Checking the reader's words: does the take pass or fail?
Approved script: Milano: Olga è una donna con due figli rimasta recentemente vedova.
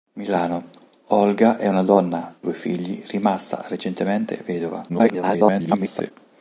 fail